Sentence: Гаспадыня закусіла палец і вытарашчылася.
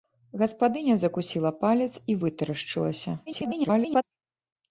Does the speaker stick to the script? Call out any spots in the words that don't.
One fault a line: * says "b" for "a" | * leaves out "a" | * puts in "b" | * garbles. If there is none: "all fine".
* garbles